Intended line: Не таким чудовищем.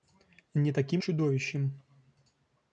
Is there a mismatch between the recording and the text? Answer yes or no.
no